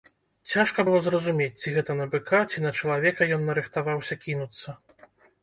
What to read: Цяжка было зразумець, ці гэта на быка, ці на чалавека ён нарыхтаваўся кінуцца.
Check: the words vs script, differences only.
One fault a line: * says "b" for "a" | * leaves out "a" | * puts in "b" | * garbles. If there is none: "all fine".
all fine